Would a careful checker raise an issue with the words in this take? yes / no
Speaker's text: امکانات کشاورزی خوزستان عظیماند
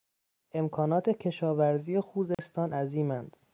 no